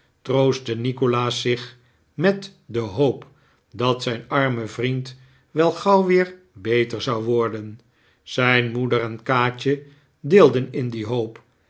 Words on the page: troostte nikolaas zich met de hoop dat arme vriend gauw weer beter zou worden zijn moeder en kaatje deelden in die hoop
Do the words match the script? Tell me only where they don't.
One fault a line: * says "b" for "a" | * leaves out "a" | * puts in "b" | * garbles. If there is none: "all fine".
* puts in "zijn"
* puts in "wel"